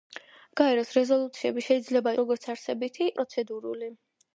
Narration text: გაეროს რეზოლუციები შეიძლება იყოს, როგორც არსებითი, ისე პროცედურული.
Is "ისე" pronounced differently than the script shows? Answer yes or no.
yes